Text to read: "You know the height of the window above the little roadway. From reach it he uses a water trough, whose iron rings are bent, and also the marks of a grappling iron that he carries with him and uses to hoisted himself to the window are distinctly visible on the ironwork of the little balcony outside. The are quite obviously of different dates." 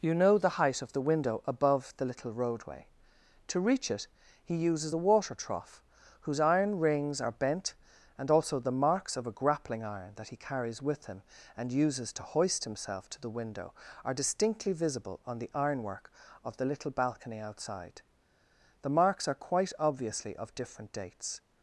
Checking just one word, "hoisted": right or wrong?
wrong